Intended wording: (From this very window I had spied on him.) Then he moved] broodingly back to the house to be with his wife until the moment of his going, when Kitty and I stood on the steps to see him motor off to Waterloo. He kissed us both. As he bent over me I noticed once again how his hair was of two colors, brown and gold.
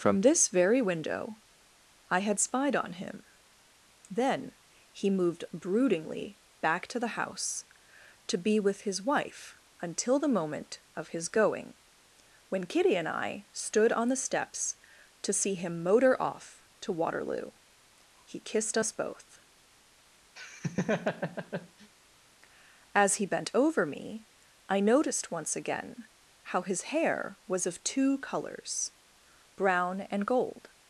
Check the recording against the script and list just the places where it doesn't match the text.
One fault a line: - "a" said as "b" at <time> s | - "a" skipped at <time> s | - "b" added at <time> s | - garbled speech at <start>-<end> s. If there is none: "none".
none